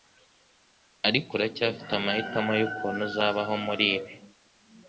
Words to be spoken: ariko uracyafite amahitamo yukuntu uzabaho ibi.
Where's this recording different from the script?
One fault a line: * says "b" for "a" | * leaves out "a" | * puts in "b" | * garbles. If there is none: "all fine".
* puts in "muri"